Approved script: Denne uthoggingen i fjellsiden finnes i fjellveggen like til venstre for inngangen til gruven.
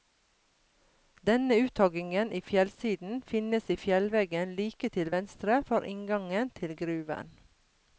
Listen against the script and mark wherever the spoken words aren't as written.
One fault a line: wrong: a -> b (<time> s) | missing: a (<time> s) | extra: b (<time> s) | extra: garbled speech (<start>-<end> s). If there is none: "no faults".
no faults